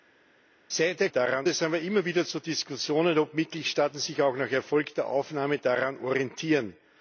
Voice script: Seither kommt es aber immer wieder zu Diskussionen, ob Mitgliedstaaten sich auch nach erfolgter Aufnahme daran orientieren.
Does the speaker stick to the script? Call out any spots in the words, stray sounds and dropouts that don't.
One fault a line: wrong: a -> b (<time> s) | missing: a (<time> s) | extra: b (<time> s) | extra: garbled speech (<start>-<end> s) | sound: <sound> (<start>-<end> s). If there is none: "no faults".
wrong: kommt -> daran (1.1 s)